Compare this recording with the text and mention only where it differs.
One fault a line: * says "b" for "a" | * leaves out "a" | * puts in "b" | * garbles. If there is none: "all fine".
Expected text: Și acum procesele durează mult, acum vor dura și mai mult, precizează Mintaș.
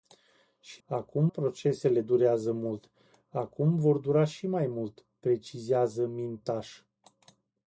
all fine